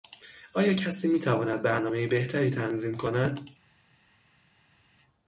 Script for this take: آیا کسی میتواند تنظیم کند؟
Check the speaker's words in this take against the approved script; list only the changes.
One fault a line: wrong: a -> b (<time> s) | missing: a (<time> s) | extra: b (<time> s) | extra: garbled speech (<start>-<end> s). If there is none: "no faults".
extra: برنامهی بهتری (1.6 s)